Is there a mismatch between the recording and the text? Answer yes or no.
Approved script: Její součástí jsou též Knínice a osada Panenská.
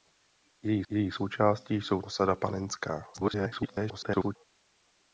yes